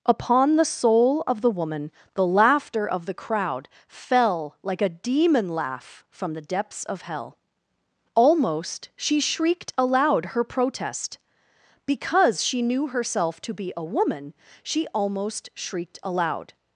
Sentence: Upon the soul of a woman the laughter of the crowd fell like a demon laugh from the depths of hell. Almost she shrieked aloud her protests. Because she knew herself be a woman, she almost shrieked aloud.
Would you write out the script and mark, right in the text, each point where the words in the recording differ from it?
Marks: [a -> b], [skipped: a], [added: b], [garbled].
Upon the soul of [a -> the] woman the laughter of the crowd fell like a demon laugh from the depths of hell. Almost she shrieked aloud her [protests. -> protest] Because she knew herself [added: to] be a woman, she almost shrieked aloud.